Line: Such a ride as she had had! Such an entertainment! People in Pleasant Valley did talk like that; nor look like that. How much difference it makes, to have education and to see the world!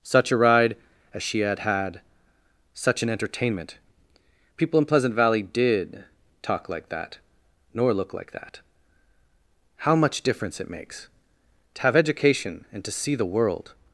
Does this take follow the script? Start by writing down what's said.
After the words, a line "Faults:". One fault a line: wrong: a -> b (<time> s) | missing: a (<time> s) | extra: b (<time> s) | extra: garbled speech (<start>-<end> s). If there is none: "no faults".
Such a ride as she had had! Such an entertainment! People in Pleasant Valley did talk like that; nor look like that. How much difference it makes, to have education and to see the world!
Faults:
no faults